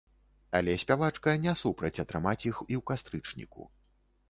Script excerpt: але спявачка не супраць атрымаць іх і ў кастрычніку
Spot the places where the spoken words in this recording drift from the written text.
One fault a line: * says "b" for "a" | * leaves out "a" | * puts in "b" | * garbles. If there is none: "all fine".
all fine